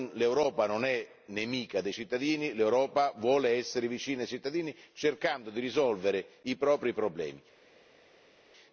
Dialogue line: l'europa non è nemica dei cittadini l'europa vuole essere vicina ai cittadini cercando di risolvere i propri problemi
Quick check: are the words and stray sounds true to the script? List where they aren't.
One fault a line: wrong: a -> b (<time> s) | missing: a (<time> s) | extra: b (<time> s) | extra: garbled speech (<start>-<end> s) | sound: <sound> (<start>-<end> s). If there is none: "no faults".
no faults